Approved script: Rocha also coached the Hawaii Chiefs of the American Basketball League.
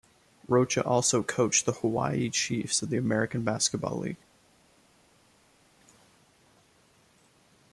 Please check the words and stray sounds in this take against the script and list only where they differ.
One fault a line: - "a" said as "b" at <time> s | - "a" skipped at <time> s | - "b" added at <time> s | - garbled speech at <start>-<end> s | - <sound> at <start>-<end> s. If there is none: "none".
none